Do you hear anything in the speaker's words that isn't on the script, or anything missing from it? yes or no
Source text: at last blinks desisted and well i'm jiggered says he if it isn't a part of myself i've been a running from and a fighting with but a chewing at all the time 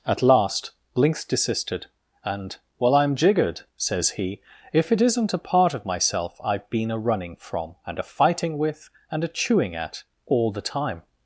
yes